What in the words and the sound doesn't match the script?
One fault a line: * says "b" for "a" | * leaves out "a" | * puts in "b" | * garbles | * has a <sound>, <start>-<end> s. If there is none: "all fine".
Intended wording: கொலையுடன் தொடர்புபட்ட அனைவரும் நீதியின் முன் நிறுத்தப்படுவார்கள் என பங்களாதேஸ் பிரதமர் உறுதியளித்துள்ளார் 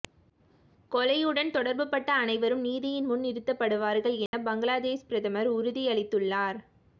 * has a dropout, 4.3-4.3 s